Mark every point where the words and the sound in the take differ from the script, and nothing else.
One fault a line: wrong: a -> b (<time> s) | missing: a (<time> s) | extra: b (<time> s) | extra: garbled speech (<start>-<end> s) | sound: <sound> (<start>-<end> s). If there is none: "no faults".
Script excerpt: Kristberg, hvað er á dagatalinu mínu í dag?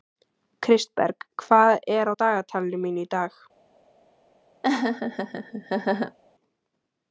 sound: laugh (4.6-6.2 s)